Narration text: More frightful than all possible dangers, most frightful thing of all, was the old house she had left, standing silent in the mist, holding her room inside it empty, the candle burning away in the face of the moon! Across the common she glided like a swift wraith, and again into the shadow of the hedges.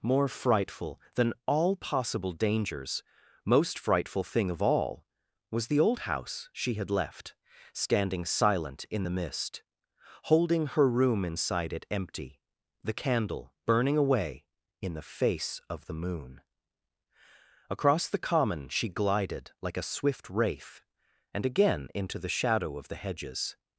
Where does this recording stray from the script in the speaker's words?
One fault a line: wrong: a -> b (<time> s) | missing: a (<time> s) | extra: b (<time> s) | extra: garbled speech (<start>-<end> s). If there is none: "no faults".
no faults